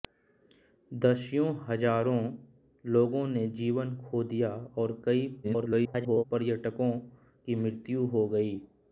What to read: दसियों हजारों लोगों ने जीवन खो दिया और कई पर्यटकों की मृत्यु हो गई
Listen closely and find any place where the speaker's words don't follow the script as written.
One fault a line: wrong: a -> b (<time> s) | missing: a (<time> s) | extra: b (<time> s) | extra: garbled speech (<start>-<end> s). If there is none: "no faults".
extra: garbled speech (5.4-6.2 s)